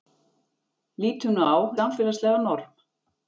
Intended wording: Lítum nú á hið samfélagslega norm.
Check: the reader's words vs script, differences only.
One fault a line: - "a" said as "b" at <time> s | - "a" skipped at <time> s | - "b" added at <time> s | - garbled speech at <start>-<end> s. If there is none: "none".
- "hið" skipped at 1.5 s